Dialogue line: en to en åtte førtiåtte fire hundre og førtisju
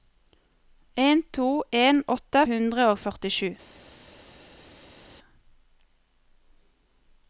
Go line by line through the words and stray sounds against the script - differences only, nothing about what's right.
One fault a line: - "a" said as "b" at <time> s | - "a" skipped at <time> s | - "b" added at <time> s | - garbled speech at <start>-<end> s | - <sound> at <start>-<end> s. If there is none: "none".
- "førtiåtte fire" skipped at 2.4 s